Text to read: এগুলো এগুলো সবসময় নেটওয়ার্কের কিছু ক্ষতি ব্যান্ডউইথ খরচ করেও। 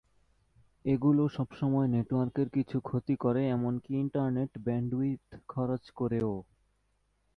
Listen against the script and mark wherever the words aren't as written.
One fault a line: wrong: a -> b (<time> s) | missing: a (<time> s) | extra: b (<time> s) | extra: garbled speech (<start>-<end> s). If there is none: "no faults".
missing: এগুলো (1.2 s)
extra: করে এমনকি ইন্টারনেট (3.2 s)